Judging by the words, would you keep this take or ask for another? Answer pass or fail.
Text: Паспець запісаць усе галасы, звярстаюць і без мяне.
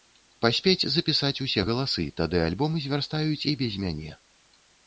fail